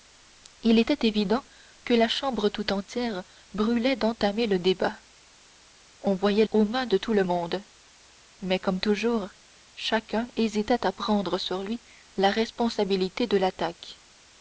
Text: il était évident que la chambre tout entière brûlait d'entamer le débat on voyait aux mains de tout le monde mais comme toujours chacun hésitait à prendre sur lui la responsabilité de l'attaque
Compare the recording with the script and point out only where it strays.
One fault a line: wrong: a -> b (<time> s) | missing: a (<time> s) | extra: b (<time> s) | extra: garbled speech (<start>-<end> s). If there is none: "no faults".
no faults